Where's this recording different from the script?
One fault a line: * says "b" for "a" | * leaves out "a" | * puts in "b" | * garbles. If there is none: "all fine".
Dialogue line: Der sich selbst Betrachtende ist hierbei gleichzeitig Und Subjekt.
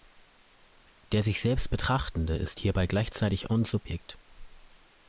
all fine